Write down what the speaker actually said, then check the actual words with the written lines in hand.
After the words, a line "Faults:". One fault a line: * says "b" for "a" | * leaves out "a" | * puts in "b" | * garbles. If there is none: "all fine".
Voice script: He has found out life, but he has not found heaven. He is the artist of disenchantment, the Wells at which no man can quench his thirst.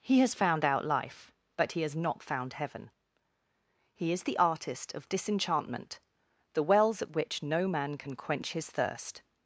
He has found out life, but he has not found heaven. He is the artist of disenchantment, the Wells at which no man can quench his thirst.
Faults:
all fine